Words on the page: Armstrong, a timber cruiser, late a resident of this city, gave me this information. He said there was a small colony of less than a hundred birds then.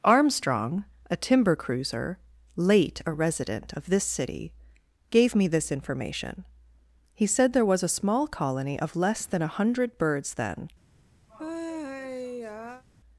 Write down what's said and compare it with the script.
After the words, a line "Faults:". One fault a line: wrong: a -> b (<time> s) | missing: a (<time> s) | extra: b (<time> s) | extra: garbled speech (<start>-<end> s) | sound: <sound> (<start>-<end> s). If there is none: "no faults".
Armstrong, a timber cruiser, late a resident of this city, gave me this information. He said there was a small colony of less than a hundred birds then.
Faults:
sound: sigh (11.3-12.8 s)